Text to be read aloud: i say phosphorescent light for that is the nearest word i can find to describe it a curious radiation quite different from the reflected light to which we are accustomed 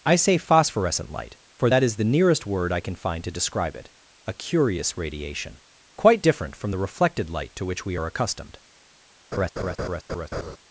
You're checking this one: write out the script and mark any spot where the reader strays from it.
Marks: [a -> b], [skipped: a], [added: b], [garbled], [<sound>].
i say phosphorescent light for that is the nearest word i can find to describe it a curious radiation quite different from the reflected light to which we are accustomed [laugh]